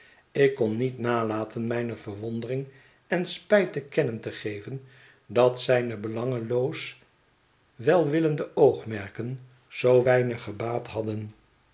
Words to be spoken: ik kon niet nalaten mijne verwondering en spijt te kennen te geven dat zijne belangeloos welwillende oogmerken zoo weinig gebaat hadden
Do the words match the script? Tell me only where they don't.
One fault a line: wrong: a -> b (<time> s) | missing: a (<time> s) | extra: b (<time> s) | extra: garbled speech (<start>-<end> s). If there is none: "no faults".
no faults